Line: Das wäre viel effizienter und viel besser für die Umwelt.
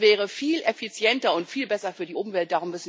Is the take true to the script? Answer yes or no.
yes